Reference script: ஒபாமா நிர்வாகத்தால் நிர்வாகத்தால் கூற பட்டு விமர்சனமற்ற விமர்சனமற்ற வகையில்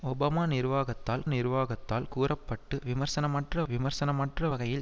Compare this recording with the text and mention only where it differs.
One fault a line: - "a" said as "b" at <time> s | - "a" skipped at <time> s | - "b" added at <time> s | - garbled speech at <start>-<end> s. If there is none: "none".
none